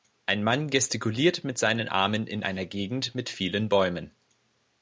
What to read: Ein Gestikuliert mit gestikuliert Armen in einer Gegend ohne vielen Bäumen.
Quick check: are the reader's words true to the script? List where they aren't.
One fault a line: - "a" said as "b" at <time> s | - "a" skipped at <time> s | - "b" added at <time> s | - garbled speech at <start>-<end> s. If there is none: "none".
- "Mann" added at 0.4 s
- "gestikuliert" said as "seinen" at 1.6 s
- "ohne" said as "mit" at 3.2 s